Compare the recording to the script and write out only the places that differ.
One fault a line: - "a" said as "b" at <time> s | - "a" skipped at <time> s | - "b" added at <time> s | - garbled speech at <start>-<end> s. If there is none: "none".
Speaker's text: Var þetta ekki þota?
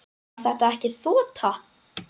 none